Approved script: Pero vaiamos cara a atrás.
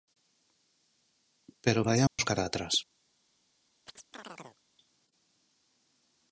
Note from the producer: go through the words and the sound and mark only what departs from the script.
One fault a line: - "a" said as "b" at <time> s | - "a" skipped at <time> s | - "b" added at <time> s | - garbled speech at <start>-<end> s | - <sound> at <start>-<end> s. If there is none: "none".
- dropout at 2.1-2.2 s
- chirp at 3.9-4.6 s